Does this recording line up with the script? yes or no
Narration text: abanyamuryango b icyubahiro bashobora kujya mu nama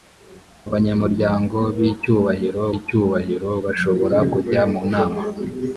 no